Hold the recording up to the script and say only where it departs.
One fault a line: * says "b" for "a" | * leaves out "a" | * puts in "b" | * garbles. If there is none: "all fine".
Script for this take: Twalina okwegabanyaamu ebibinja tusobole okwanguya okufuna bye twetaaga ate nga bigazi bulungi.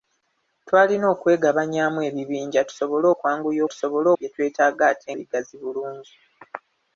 * says "tusobole" for "okufuna"
* leaves out "nga"